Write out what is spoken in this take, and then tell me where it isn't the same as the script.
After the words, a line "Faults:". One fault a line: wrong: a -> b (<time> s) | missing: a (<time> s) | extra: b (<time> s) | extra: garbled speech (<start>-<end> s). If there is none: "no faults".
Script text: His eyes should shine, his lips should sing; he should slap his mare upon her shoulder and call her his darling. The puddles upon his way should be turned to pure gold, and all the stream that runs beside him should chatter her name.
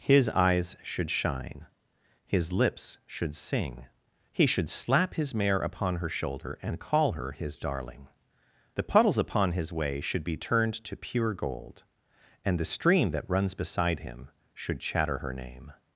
His eyes should shine, his lips should sing; he should slap his mare upon her shoulder and call her his darling. The puddles upon his way should be turned to pure gold, and the stream that runs beside him should chatter her name.
Faults:
missing: all (12.6 s)